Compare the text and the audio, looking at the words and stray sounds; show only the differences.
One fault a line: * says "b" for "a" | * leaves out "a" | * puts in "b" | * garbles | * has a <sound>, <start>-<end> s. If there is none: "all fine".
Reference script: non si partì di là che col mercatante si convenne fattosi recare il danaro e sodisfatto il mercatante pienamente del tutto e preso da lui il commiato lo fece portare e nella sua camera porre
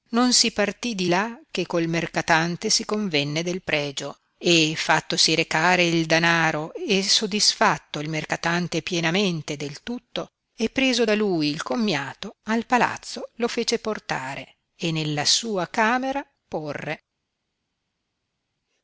* puts in "del pregio e"
* puts in "al palazzo"